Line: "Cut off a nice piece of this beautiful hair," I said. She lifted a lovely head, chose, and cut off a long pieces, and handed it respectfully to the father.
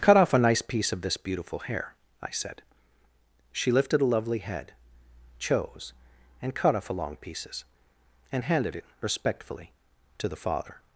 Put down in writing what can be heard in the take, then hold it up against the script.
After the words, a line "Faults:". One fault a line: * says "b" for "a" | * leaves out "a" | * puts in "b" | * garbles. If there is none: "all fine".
"Cut off a nice piece of this beautiful hair," I said. She lifted a lovely head, chose, and cut off a long pieces, and handed it respectfully to the father.
Faults:
all fine